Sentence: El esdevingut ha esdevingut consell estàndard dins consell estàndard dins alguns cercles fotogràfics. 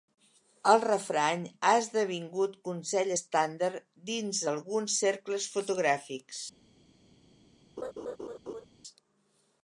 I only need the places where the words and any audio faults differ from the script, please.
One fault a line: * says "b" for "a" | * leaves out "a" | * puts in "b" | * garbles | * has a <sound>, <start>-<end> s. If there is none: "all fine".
* says "refrany" for "esdevingut"
* leaves out "consell estàndard dins"
* has a laugh, 7.8-8.7 s